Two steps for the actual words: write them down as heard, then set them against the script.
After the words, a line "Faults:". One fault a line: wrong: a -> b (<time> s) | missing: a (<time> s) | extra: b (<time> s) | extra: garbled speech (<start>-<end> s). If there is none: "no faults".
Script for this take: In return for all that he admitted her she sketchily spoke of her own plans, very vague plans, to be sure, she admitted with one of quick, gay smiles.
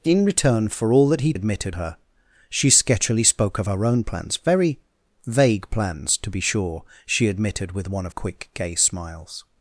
In return for all that he admitted her she sketchily spoke of her own plans, very vague plans, to be sure, she admitted with one of quick, gay smiles.
Faults:
no faults